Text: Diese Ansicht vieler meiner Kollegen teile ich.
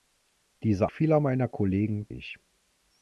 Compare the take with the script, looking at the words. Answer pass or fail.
fail